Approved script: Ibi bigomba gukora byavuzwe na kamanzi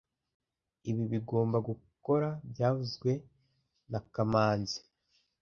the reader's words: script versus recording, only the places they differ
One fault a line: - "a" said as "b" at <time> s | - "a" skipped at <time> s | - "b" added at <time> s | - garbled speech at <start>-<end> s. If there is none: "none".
none